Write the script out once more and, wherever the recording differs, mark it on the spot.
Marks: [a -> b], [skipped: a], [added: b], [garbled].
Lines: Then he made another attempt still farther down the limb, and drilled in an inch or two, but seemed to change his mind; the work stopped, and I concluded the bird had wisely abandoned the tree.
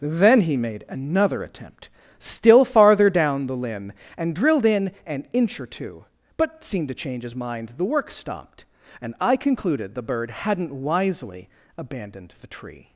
Then he made another attempt still farther down the limb, and drilled in an inch or two, but seemed to change his mind; the work stopped, and I concluded the bird [had -> hadn't] wisely abandoned the tree.